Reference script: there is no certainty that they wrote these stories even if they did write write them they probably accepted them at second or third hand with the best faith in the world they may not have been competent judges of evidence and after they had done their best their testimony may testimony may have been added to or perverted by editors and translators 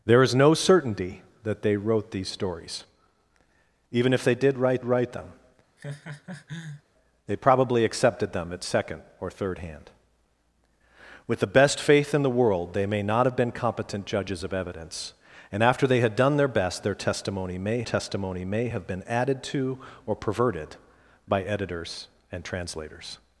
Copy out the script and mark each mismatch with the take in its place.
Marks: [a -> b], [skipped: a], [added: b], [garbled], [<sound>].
there is no certainty that they wrote these stories even if they did write write them [laugh] they probably accepted them at second or third hand with the best faith in the world they may not have been competent judges of evidence and after they had done their best their testimony may testimony may have been added to or perverted by editors and translators